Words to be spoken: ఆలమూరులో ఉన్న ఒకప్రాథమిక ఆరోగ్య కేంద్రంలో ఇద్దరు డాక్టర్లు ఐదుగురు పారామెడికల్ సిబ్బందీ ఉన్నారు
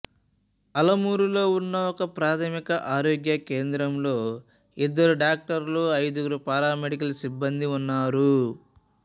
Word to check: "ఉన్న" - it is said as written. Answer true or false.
true